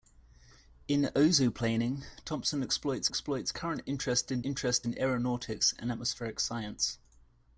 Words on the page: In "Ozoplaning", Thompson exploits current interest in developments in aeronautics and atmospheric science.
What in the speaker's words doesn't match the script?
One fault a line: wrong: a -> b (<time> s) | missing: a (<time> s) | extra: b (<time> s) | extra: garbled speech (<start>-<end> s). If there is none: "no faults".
extra: exploits (3.1 s)
wrong: developments -> interest (4.4 s)